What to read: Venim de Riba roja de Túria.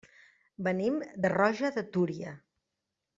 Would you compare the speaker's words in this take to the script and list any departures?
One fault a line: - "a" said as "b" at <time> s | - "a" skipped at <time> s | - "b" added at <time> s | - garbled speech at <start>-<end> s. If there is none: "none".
- "Riba" skipped at 1.3 s